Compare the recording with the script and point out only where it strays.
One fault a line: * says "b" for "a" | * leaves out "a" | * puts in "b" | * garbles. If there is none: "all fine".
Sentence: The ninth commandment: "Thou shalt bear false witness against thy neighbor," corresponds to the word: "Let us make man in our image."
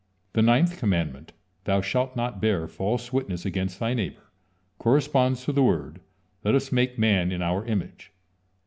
* puts in "not"